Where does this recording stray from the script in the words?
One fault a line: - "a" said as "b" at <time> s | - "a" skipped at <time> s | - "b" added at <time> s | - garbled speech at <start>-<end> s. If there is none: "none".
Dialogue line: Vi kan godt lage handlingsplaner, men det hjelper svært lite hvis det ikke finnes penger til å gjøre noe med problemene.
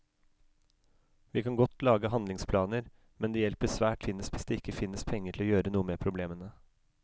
- "lite" said as "finnes" at 4.1 s